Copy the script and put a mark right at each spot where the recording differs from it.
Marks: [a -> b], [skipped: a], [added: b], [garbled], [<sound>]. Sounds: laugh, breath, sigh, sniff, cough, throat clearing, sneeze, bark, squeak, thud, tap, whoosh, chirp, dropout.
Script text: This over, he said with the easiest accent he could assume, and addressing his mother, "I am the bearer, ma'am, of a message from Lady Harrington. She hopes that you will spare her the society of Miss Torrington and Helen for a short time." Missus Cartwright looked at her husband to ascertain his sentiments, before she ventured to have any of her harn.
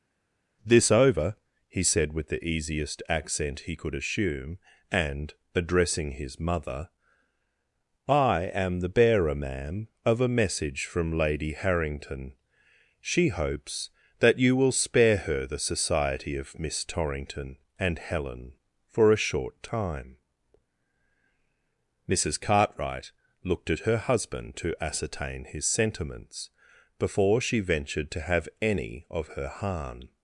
This over, he said with the easiest accent he could assume, and addressing his mother, "I am the bearer, ma'am, of a message from Lady Harrington. She hopes that you will spare her the society of Miss Torrington and Helen for a short time." Missus Cartwright looked at her husband to ascertain his sentiments, before she ventured to have any of her harn.